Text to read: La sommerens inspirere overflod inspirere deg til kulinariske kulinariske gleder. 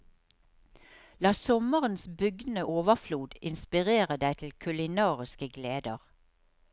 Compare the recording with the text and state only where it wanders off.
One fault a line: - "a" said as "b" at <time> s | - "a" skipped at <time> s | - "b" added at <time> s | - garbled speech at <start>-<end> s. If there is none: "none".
- "inspirere" said as "bugnende" at 2.2 s
- "kulinariske" skipped at 5.5 s